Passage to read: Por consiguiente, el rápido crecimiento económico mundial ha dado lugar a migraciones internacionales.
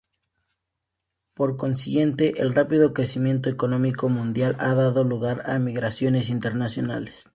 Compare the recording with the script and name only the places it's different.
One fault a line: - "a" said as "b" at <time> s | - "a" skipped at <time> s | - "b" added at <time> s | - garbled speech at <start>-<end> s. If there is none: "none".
none